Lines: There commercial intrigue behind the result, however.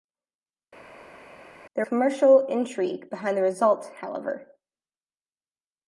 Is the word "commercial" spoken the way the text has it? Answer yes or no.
yes